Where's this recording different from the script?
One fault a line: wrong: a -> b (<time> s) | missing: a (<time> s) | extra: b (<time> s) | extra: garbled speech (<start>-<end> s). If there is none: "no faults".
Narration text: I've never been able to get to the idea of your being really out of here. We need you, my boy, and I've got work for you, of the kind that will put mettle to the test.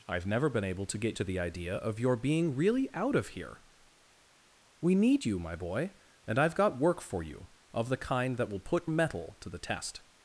no faults